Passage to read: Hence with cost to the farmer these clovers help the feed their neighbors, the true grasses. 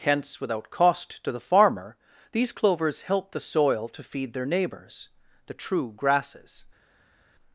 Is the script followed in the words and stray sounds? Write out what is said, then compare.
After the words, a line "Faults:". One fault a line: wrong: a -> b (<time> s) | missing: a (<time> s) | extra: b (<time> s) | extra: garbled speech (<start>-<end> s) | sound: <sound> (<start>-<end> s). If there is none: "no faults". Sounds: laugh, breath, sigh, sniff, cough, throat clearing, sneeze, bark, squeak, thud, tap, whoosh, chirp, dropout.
Hence without cost to the farmer these clovers help the soil to feed their neighbors, the true grasses.
Faults:
wrong: with -> without (0.4 s)
extra: soil to (3.4 s)